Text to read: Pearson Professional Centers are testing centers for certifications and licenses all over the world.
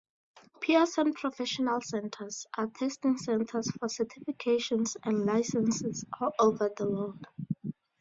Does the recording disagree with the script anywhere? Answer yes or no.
no